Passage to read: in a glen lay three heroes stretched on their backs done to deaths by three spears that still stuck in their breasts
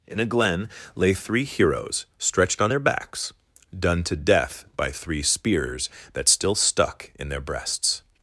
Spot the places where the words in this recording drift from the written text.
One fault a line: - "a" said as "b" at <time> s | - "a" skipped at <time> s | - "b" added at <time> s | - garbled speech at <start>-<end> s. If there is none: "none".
- "deaths" said as "death" at 4.1 s